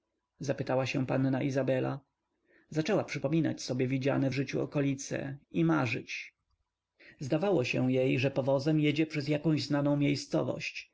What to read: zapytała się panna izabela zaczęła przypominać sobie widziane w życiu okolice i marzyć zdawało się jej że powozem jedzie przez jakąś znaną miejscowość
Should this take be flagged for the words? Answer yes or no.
no